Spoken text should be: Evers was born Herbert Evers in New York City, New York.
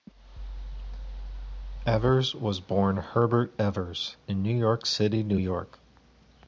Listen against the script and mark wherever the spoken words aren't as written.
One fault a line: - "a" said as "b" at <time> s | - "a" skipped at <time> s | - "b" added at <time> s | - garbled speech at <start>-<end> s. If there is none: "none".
none